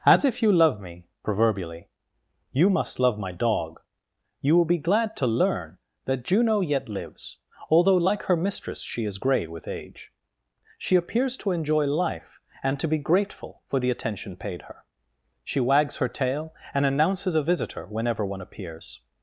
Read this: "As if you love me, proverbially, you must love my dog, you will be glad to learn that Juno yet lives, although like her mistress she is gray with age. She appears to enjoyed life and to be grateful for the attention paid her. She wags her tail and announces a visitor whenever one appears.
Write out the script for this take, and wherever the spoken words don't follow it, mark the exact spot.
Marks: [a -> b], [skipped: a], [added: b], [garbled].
"As if you love me, proverbially, you must love my dog, you will be glad to learn that Juno yet lives, although like her mistress she is gray with age. She appears to [enjoyed -> enjoy] life and to be grateful for the attention paid her. She wags her tail and announces a visitor whenever one appears.